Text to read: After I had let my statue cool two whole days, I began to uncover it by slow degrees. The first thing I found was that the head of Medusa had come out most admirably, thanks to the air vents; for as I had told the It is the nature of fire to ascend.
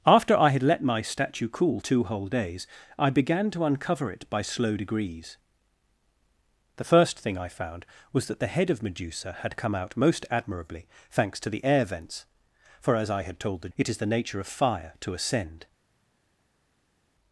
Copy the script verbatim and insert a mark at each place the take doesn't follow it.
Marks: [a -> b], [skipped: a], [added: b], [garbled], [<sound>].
After I had let my statue cool two whole days, I began to uncover it by slow degrees. The first thing I found was that the head of Medusa had come out most admirably, thanks to the air vents; for as I had told the It is the nature of fire to ascend.